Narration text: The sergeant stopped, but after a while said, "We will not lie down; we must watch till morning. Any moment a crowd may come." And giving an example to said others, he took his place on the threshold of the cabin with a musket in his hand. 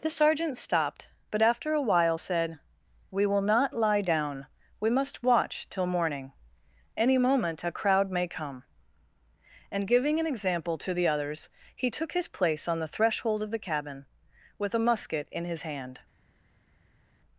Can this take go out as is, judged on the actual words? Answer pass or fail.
fail